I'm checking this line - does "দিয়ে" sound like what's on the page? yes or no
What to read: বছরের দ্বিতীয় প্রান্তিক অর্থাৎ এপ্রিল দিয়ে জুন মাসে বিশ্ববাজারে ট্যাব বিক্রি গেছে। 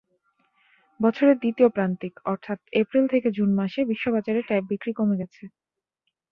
no